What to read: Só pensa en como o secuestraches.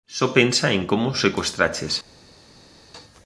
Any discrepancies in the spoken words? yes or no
no